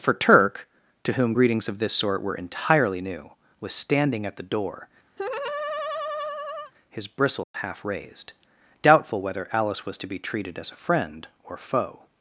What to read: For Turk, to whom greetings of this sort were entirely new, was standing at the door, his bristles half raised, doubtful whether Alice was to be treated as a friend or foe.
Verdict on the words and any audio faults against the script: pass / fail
fail